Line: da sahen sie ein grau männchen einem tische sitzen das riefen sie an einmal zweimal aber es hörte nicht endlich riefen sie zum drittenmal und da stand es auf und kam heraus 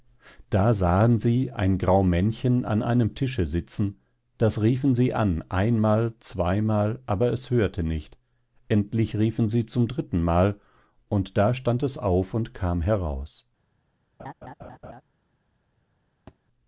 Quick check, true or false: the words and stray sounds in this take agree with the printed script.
false